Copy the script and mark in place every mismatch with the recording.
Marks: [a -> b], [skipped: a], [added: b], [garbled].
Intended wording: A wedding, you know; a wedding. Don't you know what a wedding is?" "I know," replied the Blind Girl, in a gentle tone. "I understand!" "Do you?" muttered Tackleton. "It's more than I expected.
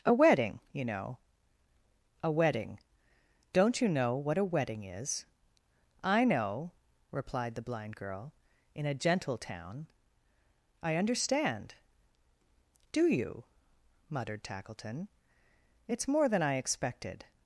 A wedding, you know; a wedding. Don't you know what a wedding is?" "I know," replied the Blind Girl, in a gentle [tone. -> town] "I understand!" "Do you?" muttered Tackleton. "It's more than I expected.